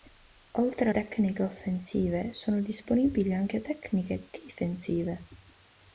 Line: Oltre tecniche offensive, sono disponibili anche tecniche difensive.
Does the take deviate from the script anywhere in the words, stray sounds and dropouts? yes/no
no